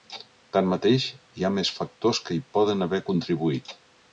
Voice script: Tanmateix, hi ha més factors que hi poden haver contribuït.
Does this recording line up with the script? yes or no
yes